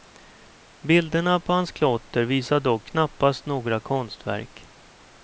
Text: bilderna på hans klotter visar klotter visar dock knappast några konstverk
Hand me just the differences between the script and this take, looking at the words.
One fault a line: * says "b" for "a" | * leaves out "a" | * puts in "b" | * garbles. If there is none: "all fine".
* leaves out "klotter visar"